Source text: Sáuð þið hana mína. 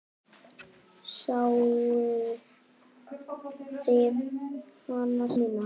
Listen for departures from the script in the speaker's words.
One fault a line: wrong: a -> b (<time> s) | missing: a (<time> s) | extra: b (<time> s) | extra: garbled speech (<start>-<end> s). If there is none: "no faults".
no faults